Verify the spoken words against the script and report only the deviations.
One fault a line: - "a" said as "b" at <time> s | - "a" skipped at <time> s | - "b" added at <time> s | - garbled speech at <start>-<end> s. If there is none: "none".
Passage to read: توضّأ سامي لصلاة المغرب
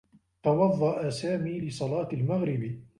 none